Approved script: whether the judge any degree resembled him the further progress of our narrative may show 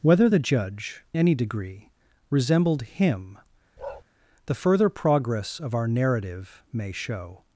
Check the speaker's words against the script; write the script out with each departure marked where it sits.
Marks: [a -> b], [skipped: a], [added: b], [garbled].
whether the judge any degree resembled him the further progress of our narrative may show